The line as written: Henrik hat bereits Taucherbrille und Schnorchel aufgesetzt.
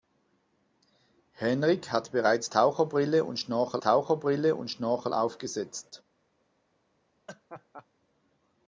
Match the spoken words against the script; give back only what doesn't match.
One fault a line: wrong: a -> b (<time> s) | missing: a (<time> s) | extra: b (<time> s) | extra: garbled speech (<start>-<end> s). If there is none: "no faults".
extra: Taucherbrille und Schnorchel (3.8 s)